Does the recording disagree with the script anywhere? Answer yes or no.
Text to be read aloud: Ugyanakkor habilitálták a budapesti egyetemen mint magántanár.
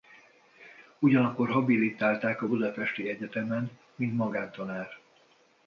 no